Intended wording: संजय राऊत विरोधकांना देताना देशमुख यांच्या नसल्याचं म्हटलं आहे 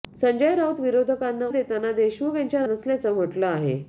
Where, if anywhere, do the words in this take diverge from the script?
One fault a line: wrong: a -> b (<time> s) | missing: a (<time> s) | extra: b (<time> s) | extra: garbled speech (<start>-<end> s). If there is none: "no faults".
no faults